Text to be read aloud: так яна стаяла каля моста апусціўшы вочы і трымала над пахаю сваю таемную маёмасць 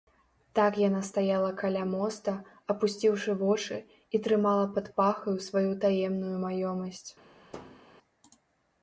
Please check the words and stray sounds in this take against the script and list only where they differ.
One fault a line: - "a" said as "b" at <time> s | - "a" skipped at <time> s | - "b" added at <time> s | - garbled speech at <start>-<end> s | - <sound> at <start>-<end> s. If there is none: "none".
- "над" said as "пад" at 4.8 s
- thud at 7.5-7.8 s